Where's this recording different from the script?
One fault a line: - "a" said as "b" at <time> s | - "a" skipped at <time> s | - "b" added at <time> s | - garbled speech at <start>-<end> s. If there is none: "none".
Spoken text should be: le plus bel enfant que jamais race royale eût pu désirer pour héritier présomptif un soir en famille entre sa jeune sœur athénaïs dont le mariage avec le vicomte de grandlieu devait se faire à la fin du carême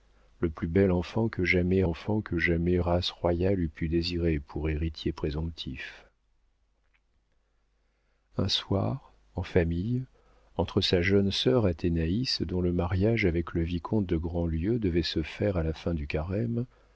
- "enfant que jamais" added at 1.8 s